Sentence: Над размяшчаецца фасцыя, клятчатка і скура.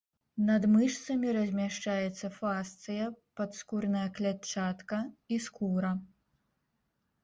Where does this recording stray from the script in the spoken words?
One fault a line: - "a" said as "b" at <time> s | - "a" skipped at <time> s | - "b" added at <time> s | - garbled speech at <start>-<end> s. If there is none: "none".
- "мышцамі" added at 0.8 s
- "падскурная" added at 3.4 s